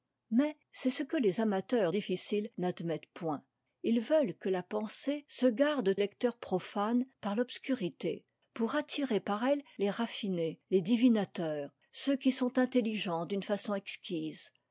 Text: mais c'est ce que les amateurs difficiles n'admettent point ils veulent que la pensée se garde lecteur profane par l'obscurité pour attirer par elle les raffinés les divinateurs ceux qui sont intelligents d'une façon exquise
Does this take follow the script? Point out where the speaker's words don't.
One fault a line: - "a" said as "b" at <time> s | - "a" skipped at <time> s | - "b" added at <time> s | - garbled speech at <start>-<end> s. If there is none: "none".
none